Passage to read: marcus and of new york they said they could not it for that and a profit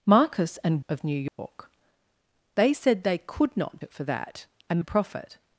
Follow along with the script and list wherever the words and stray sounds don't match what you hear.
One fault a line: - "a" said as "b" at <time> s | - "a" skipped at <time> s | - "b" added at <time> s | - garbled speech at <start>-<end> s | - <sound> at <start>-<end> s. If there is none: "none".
- dropout at 1.3-1.4 s